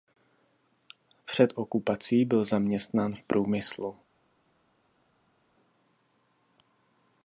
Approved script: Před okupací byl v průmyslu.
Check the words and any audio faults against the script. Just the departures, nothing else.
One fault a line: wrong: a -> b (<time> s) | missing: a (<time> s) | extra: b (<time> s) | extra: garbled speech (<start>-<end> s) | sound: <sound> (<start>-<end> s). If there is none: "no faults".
extra: zaměstnán (2.5 s)